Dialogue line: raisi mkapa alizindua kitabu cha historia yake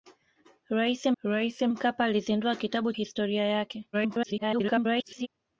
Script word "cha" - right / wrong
wrong